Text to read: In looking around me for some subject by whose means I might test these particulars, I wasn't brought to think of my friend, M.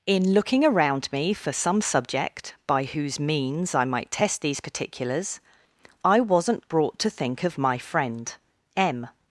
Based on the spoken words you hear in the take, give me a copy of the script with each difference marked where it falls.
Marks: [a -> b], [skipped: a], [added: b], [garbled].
In looking around me for some subject by whose means I might test these particulars, I wasn't brought to think of my friend, M.